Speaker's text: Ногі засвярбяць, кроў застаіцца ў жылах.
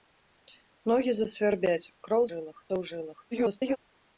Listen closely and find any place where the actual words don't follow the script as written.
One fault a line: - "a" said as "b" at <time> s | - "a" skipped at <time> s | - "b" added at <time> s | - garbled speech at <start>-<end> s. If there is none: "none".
- "застаіцца" said as "жылах" at 2.3 s
- garbled speech at 3.3-3.8 s